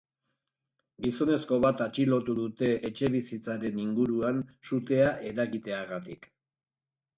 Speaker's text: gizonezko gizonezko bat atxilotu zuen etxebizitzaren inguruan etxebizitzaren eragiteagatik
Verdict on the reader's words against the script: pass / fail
fail